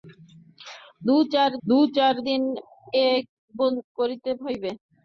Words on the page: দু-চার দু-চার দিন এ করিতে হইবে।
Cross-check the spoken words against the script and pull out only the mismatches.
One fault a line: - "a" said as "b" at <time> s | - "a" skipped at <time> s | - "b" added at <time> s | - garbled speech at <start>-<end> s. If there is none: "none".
none